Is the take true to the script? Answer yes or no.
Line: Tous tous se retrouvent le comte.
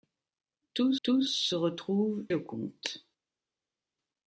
yes